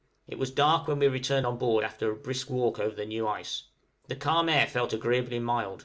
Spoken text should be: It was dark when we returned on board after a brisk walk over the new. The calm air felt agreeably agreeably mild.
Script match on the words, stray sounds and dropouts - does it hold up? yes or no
no